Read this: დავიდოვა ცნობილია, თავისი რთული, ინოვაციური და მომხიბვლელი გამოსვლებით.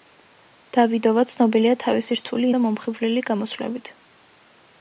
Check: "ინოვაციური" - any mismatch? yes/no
yes